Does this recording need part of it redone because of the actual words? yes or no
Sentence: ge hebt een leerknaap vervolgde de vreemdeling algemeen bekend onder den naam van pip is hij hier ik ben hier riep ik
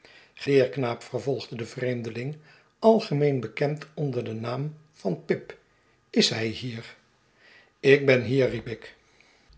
yes